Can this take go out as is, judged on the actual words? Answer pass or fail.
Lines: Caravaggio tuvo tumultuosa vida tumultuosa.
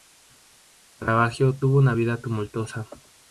fail